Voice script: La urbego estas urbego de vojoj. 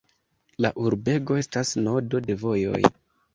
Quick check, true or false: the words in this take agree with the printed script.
false